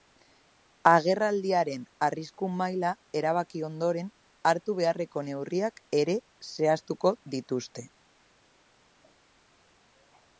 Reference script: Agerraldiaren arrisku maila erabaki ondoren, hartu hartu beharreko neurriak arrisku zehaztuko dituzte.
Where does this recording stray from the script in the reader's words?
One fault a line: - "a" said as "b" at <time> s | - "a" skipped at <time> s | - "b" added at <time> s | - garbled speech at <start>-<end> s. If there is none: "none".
- "hartu" skipped at 4.8 s
- "arrisku" said as "ere" at 6.0 s